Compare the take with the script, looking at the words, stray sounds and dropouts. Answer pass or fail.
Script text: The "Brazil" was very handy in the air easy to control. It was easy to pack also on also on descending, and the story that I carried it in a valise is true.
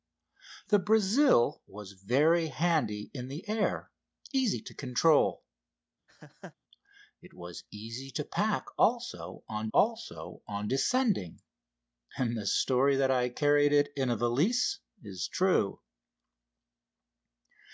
fail